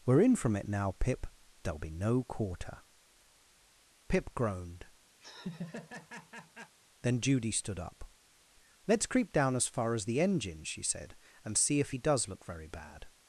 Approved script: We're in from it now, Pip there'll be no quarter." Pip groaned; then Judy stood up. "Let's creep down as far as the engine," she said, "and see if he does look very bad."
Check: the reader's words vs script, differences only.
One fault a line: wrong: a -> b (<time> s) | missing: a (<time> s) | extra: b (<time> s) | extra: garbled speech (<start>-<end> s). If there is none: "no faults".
no faults